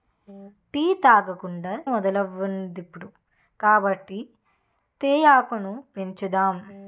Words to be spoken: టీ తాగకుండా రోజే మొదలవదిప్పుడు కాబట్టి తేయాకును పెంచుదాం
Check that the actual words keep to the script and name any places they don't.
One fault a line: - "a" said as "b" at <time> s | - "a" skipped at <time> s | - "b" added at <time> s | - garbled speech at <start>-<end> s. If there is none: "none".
- "రోజే" skipped at 1.7 s